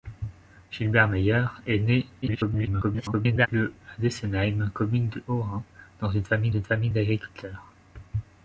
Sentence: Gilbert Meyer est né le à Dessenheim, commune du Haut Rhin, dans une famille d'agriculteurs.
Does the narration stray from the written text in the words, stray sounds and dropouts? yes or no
yes